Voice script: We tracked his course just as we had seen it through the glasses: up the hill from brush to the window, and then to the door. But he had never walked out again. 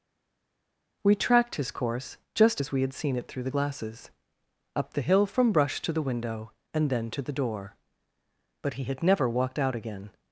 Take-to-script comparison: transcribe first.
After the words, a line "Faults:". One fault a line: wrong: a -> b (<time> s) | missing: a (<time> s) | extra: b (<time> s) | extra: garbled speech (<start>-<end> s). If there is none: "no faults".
We tracked his course just as we had seen it through the glasses: up the hill from brush to the window, and then to the door. But he had never walked out again.
Faults:
no faults